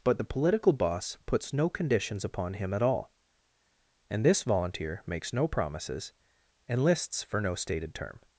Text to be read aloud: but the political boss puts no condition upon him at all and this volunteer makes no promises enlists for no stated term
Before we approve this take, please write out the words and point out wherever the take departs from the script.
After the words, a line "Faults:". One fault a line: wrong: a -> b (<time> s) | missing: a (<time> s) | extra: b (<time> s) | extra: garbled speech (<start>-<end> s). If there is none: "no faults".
but the political boss puts no conditions upon him at all and this volunteer makes no promises enlists for no stated term
Faults:
wrong: condition -> conditions (1.7 s)